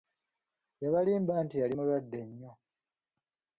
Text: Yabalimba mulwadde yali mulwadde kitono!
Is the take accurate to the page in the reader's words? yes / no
no